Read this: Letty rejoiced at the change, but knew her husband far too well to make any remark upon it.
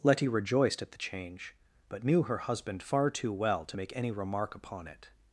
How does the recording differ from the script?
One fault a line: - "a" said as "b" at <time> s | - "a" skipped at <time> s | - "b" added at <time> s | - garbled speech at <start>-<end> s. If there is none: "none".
none